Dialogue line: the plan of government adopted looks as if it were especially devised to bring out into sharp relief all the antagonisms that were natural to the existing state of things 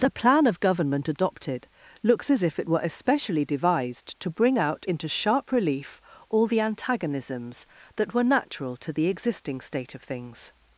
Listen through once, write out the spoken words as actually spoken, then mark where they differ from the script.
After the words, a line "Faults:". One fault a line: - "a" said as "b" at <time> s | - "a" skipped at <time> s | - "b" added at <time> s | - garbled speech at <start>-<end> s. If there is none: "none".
the plan of government adopted looks as if it were especially devised to bring out into sharp relief all the antagonisms that were natural to the existing state of things
Faults:
none